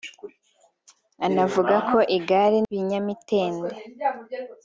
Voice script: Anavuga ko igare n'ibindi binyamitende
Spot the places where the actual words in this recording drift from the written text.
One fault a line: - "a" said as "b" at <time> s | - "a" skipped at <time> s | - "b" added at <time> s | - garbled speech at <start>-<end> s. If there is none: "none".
- "n'ibindi" skipped at 2.6 s